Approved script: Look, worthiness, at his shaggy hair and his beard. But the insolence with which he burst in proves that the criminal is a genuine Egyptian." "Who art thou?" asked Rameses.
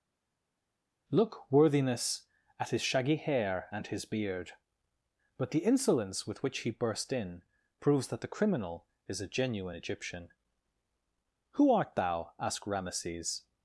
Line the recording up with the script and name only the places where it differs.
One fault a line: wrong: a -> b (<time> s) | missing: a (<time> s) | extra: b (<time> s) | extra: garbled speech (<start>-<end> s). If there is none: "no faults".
no faults